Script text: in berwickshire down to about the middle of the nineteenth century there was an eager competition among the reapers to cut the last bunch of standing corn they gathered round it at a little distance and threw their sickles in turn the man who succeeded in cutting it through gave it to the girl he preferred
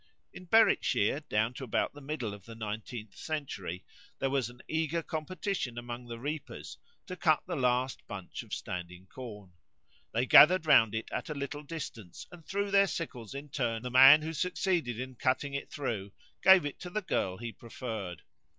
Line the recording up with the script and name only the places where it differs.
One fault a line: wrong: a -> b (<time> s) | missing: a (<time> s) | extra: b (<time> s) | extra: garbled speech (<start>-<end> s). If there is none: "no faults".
no faults